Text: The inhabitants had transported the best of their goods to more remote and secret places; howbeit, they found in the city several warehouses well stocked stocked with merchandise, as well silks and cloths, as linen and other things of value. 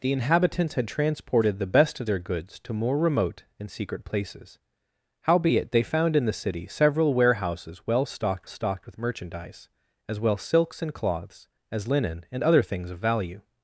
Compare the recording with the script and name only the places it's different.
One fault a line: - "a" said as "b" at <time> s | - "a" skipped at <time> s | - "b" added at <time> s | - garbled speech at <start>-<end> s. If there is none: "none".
none